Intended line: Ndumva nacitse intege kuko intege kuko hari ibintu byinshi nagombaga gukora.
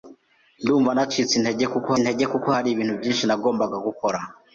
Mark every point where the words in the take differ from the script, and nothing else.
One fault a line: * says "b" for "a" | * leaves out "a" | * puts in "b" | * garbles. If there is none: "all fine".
all fine